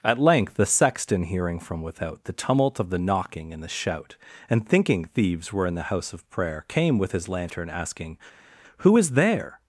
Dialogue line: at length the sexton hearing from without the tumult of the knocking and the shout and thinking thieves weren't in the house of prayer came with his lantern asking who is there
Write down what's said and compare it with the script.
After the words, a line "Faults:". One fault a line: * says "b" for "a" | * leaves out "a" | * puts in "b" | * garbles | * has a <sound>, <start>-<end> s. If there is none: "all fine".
at length the sexton hearing from without the tumult of the knocking and the shout and thinking thieves were in the house of prayer came with his lantern asking who is there
Faults:
* says "were" for "weren't"